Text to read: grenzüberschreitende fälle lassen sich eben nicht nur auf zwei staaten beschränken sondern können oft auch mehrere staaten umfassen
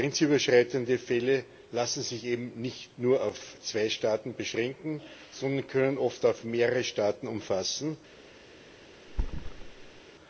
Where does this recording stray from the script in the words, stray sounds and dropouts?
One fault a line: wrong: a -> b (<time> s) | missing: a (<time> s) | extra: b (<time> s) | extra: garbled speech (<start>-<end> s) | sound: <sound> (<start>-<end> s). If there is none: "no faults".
sound: thud (9.1-10.0 s)